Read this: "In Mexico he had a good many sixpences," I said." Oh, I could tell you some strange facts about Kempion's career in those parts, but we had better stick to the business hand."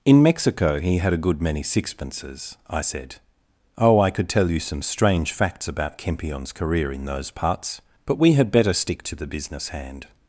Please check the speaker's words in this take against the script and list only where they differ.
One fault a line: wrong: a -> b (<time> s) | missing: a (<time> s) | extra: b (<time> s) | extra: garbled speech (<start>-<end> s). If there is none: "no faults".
no faults